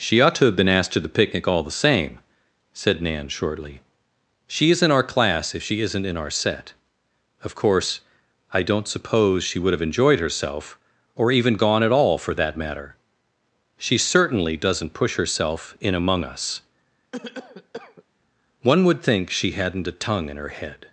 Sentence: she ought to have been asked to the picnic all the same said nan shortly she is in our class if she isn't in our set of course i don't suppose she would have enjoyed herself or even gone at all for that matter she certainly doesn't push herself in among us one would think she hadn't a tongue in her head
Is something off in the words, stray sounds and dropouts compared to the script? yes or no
yes